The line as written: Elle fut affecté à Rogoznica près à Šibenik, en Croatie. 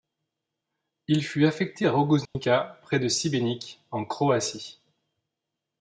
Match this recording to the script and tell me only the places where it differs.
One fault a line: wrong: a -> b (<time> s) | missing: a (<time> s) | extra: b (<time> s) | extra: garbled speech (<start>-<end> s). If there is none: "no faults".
wrong: Elle -> Il (1.1 s)
wrong: à -> de (3.0 s)